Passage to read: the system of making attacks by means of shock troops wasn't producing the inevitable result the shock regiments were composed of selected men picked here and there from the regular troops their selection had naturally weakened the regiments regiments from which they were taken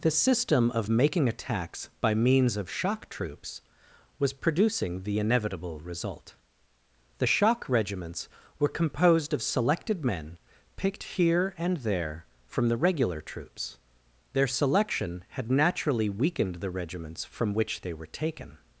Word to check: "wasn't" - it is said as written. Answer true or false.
false